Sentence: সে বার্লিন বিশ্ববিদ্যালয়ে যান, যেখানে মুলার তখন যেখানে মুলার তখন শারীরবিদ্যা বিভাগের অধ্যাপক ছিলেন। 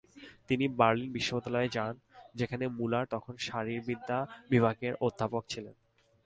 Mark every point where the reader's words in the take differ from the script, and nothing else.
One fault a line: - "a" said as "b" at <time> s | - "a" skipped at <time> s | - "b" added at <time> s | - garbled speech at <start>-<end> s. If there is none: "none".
- "সে" said as "তিনি" at 0.5 s
- "যেখানে মুলার তখন" skipped at 3.3 s